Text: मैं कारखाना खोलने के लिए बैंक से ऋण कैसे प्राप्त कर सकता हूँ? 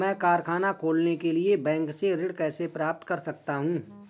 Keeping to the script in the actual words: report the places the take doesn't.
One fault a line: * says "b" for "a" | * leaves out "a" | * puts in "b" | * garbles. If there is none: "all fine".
all fine